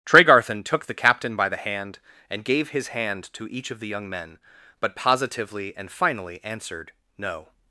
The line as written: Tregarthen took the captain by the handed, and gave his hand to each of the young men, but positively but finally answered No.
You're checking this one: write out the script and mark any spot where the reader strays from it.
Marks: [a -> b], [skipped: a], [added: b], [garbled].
Tregarthen took the captain by the [handed, -> hand] and gave his hand to each of the young men, but positively [but -> and] finally answered No.